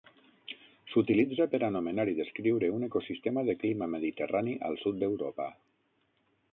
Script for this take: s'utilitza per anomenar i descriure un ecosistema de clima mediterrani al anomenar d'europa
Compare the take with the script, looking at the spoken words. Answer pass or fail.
fail